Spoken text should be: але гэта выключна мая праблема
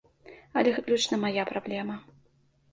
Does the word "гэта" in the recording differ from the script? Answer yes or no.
yes